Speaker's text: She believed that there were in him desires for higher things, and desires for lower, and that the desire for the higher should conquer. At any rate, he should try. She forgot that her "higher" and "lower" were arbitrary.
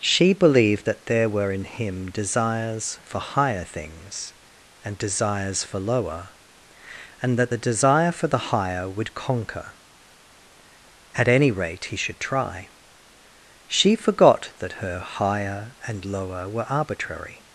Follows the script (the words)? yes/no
no